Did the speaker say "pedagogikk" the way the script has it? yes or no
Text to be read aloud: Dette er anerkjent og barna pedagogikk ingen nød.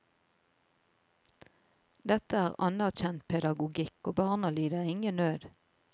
no